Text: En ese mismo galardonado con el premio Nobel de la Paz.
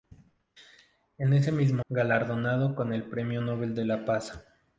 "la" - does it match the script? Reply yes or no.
yes